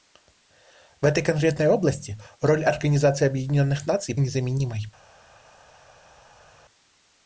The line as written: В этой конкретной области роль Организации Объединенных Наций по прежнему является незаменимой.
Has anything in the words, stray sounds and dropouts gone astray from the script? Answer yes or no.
yes